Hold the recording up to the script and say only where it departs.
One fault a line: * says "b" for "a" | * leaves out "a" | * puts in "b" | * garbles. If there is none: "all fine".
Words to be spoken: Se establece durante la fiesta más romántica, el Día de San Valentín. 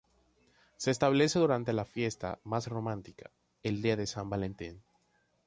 all fine